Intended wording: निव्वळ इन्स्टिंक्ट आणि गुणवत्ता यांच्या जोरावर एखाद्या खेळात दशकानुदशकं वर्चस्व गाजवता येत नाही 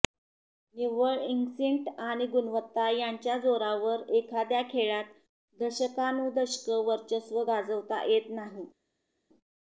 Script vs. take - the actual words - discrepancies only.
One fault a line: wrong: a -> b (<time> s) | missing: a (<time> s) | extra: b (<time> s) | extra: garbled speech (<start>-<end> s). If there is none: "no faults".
no faults